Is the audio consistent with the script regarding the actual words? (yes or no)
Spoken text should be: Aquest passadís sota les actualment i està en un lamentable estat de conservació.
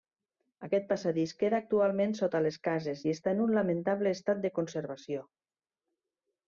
no